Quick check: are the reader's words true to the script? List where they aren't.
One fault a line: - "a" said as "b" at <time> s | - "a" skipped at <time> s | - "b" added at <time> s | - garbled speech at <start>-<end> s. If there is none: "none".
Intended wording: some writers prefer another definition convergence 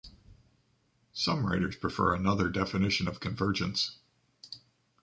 - "of" added at 3.1 s